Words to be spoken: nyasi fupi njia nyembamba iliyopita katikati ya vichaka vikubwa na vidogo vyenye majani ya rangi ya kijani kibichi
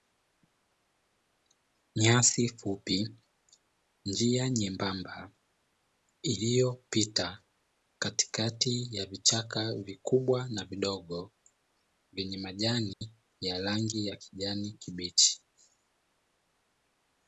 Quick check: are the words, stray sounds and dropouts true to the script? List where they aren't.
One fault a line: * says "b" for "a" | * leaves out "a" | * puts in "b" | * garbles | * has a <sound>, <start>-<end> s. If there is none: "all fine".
* has a dropout, 12.9-13.0 s